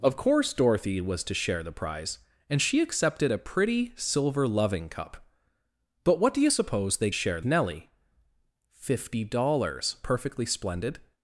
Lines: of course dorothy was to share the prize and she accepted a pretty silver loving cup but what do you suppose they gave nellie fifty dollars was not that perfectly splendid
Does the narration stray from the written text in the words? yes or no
yes